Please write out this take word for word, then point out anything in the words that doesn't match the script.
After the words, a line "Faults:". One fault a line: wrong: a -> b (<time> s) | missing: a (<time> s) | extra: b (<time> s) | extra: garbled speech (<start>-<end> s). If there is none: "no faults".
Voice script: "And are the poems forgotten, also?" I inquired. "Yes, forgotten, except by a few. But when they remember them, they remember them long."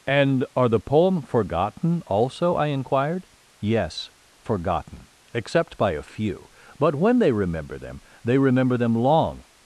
"And are the poem forgotten, also?" I inquired. "Yes, forgotten, except by a few. But when they remember them, they remember them long."
Faults:
wrong: poems -> poem (0.8 s)